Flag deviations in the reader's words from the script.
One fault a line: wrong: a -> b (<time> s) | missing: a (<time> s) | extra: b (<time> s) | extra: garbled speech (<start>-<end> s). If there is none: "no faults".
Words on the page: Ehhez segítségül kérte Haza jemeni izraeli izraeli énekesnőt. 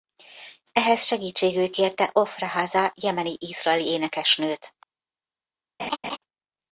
extra: Ofra (2.1 s)
missing: izraeli (3.9 s)